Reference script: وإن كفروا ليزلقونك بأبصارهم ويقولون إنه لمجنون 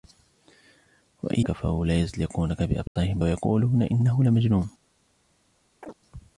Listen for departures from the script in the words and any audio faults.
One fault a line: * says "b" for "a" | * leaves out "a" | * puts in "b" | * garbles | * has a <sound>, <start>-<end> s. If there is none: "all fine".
* has a dropout, 2.9-3.0 s
* has a chirp, 5.8-6.0 s